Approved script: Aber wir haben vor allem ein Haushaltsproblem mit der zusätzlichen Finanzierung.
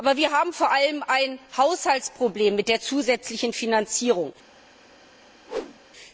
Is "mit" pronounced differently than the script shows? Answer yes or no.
no